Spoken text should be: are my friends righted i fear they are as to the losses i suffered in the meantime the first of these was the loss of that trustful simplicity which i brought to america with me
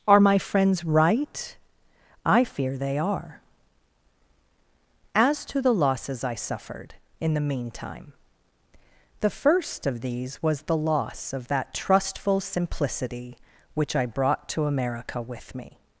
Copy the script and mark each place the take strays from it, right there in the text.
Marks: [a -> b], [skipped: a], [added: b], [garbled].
are my friends [righted -> right] i fear they are as to the losses i suffered in the meantime the first of these was the loss of that trustful simplicity which i brought to america with me